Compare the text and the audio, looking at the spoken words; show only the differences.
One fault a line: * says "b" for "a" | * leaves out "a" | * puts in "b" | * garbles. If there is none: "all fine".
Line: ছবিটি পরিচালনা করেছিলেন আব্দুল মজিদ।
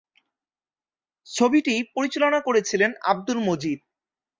all fine